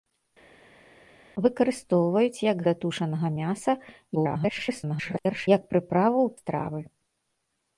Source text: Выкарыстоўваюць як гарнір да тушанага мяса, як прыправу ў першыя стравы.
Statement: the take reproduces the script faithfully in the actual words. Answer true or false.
false